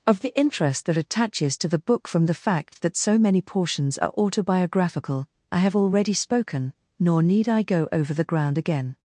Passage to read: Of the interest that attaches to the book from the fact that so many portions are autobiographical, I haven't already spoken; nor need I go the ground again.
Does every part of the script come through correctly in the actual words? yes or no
no